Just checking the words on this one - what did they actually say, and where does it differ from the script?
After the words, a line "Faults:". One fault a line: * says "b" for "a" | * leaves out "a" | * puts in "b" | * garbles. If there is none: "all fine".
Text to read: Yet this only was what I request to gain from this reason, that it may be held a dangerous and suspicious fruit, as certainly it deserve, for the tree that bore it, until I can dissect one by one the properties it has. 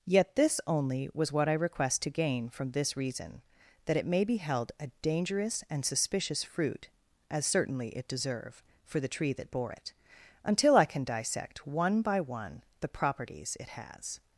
Yet this only was what I request to gain from this reason, that it may be held a dangerous and suspicious fruit, as certainly it deserve, for the tree that bore it, until I can dissect one by one the properties it has.
Faults:
all fine